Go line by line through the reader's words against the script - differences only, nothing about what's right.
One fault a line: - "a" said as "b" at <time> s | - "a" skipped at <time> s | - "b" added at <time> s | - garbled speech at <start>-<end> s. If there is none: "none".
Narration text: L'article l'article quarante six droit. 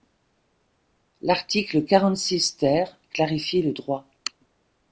- "l'article" skipped at 1.8 s
- "ter clarifie le" added at 2.6 s